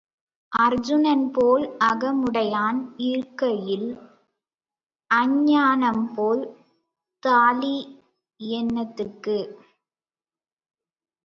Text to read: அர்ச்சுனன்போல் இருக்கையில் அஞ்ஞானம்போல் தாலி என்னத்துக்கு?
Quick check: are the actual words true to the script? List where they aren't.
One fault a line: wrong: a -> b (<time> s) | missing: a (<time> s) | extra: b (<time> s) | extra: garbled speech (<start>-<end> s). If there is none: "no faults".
extra: அகமுடையான் (1.9 s)